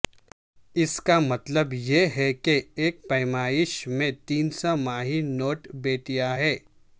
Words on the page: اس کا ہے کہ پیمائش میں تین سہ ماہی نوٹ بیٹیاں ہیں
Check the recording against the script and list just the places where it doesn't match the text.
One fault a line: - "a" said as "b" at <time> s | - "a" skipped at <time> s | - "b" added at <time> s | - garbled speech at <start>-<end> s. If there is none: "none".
- "مطلب یہ" added at 1.2 s
- "ایک" added at 2.8 s